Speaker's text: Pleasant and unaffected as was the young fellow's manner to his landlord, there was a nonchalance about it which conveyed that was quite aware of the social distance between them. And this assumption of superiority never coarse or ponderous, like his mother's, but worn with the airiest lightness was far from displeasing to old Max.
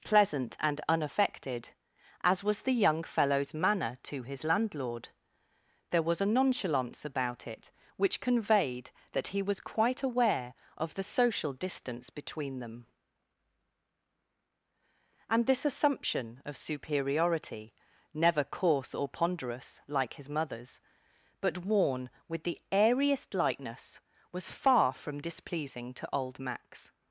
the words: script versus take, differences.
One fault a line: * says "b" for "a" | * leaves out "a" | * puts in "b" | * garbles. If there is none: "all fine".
* puts in "he"